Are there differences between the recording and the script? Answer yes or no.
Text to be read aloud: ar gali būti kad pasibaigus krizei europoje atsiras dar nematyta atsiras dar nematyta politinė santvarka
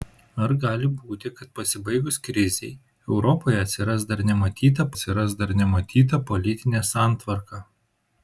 no